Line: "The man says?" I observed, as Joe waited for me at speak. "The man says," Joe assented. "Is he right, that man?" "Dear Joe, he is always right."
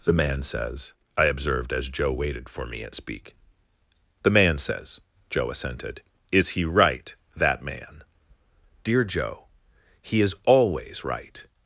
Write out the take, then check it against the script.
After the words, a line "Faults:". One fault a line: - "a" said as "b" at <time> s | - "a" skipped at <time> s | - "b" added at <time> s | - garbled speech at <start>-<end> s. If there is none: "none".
"The man says?" I observed, as Joe waited for me at speak. "The man says," Joe assented. "Is he right, that man?" "Dear Joe, he is always right."
Faults:
none